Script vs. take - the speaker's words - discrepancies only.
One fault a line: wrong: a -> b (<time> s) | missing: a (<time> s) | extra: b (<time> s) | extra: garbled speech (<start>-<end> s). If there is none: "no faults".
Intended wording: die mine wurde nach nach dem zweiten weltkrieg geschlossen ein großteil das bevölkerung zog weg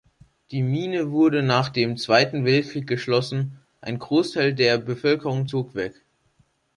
missing: nach (1.7 s)
wrong: das -> der (4.5 s)